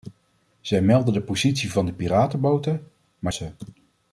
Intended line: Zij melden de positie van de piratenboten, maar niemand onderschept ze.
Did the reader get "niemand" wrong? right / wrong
wrong